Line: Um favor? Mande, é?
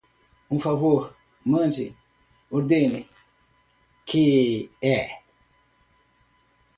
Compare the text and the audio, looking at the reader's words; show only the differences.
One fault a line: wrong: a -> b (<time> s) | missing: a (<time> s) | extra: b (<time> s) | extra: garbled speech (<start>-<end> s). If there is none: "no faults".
extra: ordene que (2.5 s)